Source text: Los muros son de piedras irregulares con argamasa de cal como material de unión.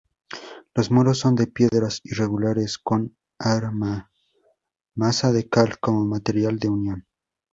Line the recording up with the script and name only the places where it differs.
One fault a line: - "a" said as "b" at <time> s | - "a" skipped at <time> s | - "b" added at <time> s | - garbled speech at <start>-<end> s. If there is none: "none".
none